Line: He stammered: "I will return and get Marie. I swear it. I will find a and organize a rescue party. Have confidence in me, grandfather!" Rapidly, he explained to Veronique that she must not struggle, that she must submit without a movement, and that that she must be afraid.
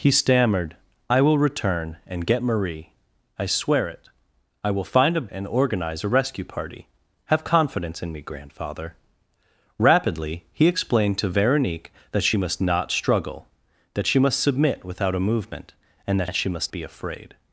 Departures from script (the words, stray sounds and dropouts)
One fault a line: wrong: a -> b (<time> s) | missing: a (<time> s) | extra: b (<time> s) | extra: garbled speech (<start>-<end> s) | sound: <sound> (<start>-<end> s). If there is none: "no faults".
no faults